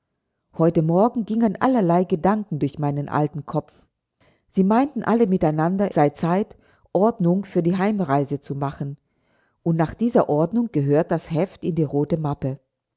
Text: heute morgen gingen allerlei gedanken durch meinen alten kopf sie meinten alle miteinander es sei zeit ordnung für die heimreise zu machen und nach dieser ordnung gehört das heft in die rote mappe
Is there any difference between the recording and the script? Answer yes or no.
yes